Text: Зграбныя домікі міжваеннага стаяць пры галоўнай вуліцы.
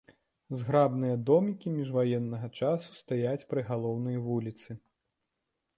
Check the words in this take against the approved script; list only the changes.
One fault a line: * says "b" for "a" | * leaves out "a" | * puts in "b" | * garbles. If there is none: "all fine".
* puts in "часу"